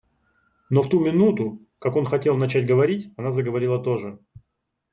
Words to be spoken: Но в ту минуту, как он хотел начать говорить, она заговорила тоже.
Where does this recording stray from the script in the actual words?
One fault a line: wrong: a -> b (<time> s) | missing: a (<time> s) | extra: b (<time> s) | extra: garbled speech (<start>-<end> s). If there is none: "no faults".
no faults